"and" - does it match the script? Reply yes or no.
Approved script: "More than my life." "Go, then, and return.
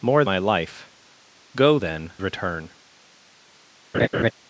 no